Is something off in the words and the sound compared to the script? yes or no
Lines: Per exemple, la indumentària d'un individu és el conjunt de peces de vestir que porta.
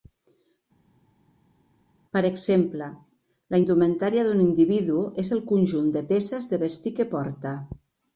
no